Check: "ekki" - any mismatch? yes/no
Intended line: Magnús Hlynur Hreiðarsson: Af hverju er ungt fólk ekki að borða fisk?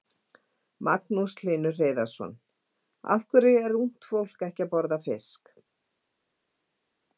no